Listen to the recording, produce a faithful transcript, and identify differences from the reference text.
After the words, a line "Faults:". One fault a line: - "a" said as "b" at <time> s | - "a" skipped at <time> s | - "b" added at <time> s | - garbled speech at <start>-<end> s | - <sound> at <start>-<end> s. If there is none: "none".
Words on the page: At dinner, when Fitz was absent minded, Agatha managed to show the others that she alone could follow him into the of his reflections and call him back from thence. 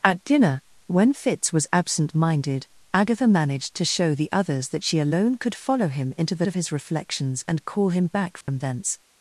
At dinner, when Fitz was absent minded, Agatha managed to show the others that she alone could follow him into the of his reflections and call him back from thence.
Faults:
- dropout at 8.4-8.5 s